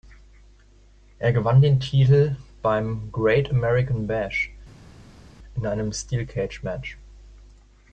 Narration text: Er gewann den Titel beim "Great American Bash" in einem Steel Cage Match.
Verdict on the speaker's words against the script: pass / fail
pass